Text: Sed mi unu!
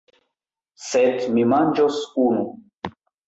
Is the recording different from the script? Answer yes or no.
yes